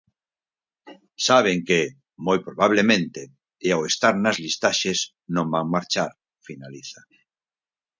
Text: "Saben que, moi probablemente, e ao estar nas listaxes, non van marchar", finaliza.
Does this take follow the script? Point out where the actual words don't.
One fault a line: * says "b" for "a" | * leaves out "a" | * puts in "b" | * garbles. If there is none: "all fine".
all fine